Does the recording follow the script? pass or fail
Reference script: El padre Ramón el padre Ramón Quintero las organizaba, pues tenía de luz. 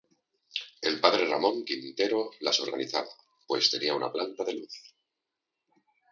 fail